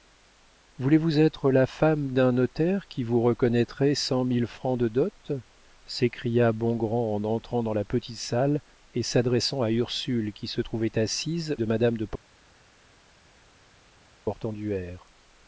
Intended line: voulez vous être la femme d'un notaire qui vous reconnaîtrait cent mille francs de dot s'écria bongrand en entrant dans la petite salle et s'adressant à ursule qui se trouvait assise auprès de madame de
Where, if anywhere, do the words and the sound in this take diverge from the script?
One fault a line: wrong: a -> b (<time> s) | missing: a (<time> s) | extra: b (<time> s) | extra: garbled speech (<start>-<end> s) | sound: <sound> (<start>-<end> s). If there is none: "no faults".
missing: auprès (11.6 s)